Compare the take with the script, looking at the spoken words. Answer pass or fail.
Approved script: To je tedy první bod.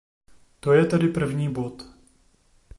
pass